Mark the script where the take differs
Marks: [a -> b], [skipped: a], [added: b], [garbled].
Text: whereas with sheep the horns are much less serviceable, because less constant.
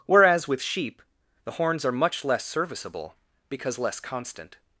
whereas with sheep the horns are much less serviceable, because less constant.